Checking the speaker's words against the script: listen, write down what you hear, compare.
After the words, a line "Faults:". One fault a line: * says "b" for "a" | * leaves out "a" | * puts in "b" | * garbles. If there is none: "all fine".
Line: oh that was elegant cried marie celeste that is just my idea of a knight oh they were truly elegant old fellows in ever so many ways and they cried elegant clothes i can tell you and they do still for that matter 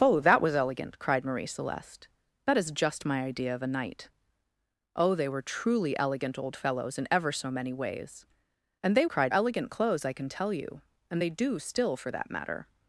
oh that was elegant cried marie celeste that is just my idea of a knight oh they were truly elegant old fellows in ever so many ways and they cried elegant clothes i can tell you and they do still for that matter
Faults:
all fine